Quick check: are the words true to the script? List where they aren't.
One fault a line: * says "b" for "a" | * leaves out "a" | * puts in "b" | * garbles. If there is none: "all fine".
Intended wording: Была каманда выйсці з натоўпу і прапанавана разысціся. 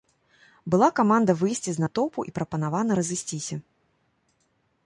all fine